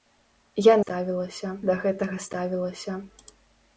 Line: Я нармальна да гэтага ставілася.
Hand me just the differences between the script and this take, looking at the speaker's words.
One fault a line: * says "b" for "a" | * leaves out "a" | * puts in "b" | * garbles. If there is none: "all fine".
* says "ставілася" for "нармальна"